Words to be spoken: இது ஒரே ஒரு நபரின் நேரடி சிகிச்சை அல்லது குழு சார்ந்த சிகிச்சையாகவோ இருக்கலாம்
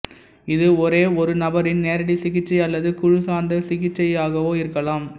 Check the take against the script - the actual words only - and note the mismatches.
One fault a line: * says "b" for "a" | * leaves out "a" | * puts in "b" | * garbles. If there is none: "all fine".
all fine